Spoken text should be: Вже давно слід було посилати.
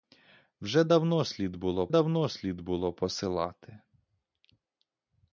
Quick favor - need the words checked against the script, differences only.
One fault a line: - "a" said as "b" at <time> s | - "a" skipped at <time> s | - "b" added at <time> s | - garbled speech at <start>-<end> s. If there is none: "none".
- "давно слід було" added at 1.9 s